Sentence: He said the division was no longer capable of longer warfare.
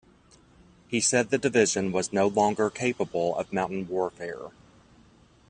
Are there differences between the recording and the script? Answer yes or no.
yes